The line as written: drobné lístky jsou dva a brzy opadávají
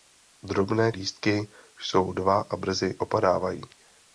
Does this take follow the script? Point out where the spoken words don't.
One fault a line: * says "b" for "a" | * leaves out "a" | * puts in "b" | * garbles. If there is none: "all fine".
all fine